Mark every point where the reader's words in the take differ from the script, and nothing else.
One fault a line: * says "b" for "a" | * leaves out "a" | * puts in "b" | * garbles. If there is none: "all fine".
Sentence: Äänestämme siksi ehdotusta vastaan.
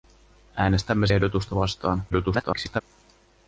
* leaves out "siksi"
* garbles